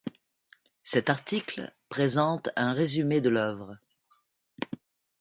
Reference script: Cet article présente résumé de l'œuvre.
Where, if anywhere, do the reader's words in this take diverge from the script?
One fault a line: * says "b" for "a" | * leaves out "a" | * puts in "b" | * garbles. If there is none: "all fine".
* puts in "un"